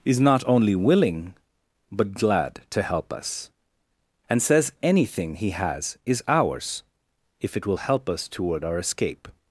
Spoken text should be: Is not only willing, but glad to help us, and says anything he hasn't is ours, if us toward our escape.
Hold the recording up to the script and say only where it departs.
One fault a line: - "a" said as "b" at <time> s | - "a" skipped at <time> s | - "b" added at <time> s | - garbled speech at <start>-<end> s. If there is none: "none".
- "hasn't" said as "has" at 5.5 s
- "it will help" added at 7.6 s